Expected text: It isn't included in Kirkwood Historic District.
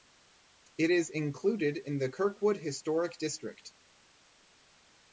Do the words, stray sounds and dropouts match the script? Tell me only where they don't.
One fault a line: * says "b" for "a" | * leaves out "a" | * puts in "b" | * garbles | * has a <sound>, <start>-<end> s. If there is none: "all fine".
* says "is" for "isn't"
* puts in "the"